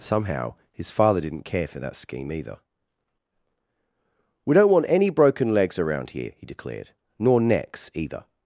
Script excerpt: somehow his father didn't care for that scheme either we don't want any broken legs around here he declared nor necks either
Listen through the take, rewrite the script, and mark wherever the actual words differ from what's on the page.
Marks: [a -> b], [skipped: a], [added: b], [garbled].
somehow his father didn't care for that scheme either we don't want any broken legs around here he declared nor necks either